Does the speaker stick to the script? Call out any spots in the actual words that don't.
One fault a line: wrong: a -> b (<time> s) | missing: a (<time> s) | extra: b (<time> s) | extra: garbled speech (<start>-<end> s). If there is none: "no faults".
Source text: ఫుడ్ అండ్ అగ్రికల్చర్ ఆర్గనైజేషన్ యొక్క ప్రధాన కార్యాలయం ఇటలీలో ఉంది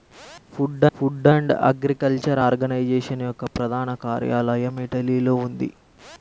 extra: ఫుడ్ (1.0 s)